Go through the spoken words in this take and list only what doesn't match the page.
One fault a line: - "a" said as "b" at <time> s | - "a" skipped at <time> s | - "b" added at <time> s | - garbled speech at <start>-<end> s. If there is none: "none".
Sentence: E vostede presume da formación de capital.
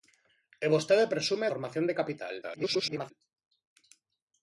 - "da" skipped at 1.5 s
- garbled speech at 2.4-3.1 s